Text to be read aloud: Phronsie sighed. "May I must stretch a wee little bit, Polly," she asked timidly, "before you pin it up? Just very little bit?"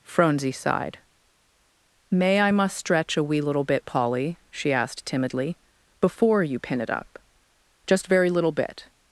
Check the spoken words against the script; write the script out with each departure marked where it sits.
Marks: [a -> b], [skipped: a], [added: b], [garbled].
Phronsie sighed. "May I must stretch a wee little bit, Polly," she asked timidly, "before you pin it up? Just very little bit?"